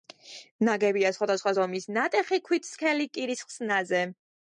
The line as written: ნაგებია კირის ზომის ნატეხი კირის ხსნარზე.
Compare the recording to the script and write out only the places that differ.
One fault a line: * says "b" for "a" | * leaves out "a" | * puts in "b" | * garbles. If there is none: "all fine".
* says "სხვადასხვა" for "კირის"
* puts in "ქვით სქელი"